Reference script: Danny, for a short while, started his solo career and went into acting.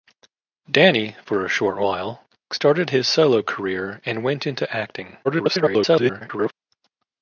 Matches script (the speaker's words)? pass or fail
fail